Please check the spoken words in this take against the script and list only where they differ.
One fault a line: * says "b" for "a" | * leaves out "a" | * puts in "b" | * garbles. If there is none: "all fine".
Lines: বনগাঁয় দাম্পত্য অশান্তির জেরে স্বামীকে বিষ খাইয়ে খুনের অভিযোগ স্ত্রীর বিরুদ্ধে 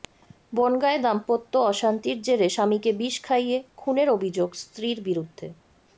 all fine